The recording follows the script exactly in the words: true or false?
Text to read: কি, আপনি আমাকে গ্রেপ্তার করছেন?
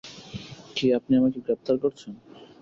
true